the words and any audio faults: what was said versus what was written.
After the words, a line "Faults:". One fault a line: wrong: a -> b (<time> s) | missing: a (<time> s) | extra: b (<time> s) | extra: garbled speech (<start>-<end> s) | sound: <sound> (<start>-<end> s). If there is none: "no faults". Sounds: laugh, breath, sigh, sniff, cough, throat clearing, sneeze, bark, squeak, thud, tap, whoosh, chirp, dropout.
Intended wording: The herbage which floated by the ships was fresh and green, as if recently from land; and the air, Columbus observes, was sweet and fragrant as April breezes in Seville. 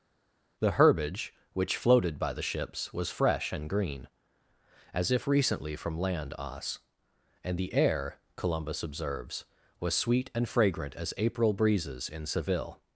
The herbage which floated by the ships was fresh and green, as if recently from land; os and the air, Columbus observes, was sweet and fragrant as April breezes in Seville.
Faults:
extra: os (6.4 s)